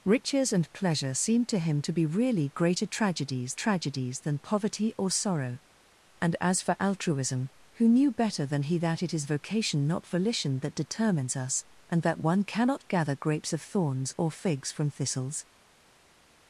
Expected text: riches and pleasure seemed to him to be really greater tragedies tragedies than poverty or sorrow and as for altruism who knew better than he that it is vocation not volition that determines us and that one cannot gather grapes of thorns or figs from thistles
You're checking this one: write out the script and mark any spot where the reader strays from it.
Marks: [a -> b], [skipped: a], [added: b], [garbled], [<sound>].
riches and pleasure seemed to him to be really greater tragedies tragedies than poverty or sorrow and as for altruism who knew better than he that it is vocation not volition that determines us and that one cannot gather grapes of thorns or figs from thistles